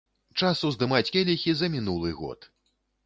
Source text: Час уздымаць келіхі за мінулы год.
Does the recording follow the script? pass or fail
pass